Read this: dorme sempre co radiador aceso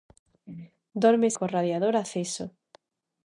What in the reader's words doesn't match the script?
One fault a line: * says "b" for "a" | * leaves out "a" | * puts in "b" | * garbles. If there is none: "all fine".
* leaves out "sempre"